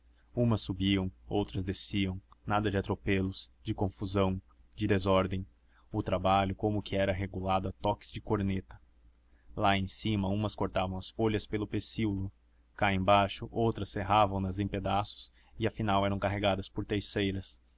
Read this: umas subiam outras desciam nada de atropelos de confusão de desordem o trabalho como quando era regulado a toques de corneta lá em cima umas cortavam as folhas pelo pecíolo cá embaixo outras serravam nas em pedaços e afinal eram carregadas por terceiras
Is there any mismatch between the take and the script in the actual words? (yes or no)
yes